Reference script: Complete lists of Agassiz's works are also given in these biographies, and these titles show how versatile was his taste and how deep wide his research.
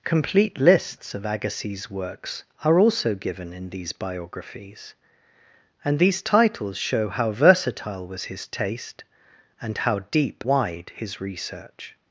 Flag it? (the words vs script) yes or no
no